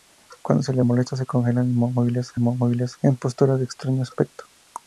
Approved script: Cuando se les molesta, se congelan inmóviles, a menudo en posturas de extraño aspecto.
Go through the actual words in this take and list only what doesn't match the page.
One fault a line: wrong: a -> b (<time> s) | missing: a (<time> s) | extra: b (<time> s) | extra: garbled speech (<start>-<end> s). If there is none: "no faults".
wrong: menudo -> inmóviles (2.3 s)